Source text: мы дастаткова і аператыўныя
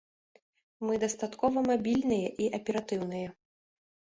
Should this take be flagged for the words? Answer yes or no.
yes